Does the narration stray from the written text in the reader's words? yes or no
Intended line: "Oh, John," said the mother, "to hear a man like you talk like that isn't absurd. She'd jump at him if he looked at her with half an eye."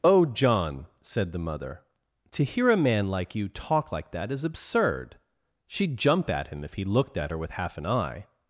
yes